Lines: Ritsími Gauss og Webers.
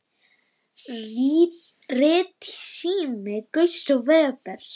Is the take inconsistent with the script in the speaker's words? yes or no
no